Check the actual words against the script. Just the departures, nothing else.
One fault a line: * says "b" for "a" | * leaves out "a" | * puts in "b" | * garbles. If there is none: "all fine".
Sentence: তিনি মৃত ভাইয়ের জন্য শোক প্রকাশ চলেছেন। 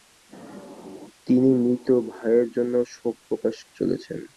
all fine